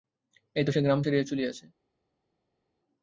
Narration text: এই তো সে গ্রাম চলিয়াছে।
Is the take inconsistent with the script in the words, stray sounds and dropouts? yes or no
yes